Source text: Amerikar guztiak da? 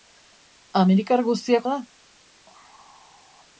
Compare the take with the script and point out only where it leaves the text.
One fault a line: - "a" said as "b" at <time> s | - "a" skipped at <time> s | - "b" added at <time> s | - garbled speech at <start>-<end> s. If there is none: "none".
none